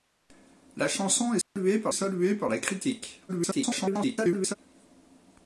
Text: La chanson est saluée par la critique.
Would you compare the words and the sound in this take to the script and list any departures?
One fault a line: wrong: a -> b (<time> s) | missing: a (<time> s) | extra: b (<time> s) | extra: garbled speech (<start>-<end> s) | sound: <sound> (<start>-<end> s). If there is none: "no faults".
sound: dropout (1.4-1.6 s)
extra: saluée par (1.9 s)
extra: garbled speech (3.3-4.5 s)